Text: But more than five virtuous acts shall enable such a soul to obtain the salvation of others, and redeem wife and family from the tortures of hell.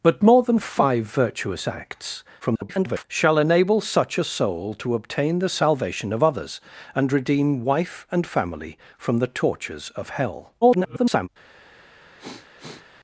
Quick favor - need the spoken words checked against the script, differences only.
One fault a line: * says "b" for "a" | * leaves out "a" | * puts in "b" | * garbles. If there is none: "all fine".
* garbles
* garbles